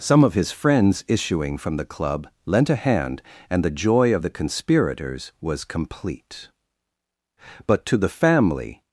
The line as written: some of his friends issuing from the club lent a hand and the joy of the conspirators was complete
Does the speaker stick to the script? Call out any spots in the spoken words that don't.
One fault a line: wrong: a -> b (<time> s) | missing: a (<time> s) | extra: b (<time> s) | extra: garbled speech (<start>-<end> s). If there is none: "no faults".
extra: but to the family (7.7 s)